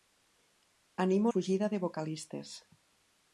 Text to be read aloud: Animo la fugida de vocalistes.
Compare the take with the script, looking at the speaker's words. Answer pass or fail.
fail